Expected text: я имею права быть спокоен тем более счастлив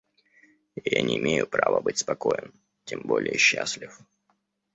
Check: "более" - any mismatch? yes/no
no